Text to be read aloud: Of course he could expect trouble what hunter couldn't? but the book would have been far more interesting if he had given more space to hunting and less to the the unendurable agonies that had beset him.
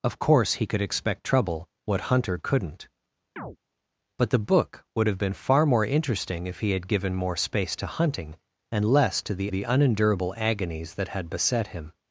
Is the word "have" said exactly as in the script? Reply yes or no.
yes